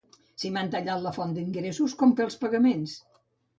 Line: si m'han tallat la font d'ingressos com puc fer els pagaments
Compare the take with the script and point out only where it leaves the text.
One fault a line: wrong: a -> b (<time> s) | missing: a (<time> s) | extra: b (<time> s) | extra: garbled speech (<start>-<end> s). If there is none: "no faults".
missing: puc (2.2 s)